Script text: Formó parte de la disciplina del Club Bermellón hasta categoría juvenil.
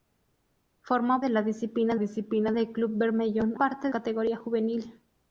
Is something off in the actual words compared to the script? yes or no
yes